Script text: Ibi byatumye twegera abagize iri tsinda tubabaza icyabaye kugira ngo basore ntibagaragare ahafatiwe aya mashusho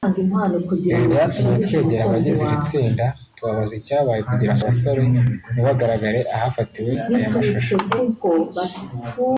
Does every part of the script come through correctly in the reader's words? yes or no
yes